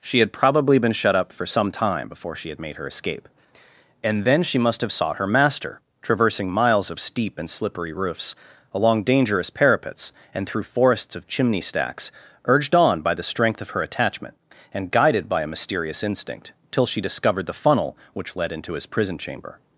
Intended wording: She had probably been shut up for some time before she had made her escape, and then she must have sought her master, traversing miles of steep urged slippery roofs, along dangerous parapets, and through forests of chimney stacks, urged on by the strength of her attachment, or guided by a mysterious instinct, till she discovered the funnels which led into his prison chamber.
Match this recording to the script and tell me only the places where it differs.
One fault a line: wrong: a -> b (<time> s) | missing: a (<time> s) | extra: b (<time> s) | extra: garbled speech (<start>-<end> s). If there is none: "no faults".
wrong: urged -> and (7.4 s)
wrong: or -> and (14.7 s)
wrong: funnels -> funnel (17.5 s)